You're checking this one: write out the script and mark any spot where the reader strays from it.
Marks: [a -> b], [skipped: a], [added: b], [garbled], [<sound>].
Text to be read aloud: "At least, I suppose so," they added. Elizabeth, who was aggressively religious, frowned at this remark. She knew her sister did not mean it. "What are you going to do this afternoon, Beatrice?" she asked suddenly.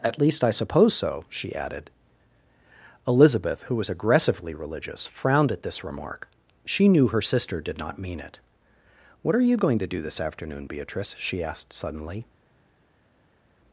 "At least, I suppose so," [they -> she] added. Elizabeth, who was aggressively religious, frowned at this remark. She knew her sister did not mean it. "What are you going to do this afternoon, Beatrice?" she asked suddenly.